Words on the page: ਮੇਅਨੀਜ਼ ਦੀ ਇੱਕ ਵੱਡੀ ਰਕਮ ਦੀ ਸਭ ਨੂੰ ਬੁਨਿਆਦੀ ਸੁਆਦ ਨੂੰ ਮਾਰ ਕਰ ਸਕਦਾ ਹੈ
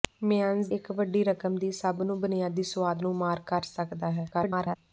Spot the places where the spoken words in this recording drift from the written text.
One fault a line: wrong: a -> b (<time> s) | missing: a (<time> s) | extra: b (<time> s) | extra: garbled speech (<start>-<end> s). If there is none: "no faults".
missing: ਦੀ (0.7 s)
extra: garbled speech (4.3-4.8 s)